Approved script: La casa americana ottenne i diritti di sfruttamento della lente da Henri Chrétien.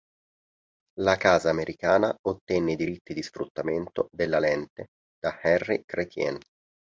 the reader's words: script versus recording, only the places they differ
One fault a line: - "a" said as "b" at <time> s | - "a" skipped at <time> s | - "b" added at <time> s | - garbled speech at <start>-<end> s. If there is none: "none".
none